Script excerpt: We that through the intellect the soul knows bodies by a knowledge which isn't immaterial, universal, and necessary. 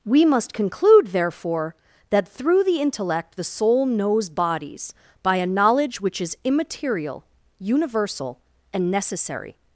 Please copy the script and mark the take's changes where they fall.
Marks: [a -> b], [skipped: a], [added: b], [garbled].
We [added: must conclude therefore] that through the intellect the soul knows bodies by a knowledge which [isn't -> is] immaterial, universal, and necessary.